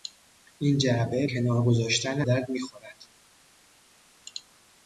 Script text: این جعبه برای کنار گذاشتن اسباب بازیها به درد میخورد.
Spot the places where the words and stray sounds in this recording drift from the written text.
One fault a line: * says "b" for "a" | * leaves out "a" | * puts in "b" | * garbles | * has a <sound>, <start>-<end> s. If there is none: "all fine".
* leaves out "برای"
* leaves out "اسباب بازیها به"